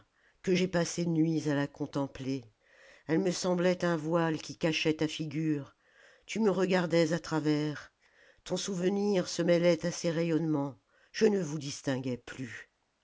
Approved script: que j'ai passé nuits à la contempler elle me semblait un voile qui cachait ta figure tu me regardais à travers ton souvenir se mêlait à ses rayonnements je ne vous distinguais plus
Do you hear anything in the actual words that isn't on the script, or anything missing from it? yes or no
no